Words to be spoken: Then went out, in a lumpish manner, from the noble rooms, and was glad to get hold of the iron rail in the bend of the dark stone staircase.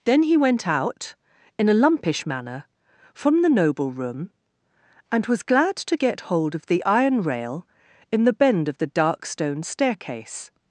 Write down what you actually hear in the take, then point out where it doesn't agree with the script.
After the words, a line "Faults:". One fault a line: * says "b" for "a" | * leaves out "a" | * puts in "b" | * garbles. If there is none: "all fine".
Then he went out, in a lumpish manner, from the noble room, and was glad to get hold of the iron rail in the bend of the dark stone staircase.
Faults:
* puts in "he"
* says "room" for "rooms"